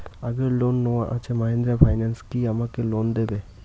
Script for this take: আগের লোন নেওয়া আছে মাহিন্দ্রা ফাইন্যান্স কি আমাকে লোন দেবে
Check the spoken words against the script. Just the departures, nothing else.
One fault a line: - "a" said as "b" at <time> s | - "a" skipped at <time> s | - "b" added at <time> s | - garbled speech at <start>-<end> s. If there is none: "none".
none